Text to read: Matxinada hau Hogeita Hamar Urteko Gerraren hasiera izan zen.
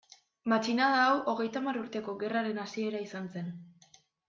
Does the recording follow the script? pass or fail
pass